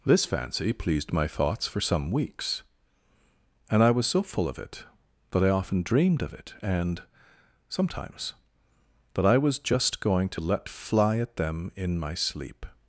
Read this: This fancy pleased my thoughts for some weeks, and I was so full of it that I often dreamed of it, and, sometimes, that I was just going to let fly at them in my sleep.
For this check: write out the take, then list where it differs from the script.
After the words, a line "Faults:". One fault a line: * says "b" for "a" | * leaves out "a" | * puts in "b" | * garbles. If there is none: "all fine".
This fancy pleased my thoughts for some weeks, and I was so full of it that I often dreamed of it, and, sometimes, that I was just going to let fly at them in my sleep.
Faults:
all fine